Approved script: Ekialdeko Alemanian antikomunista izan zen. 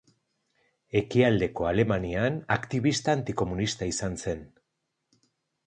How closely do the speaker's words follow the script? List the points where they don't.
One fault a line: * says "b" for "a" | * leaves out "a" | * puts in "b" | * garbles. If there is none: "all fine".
* puts in "aktibista"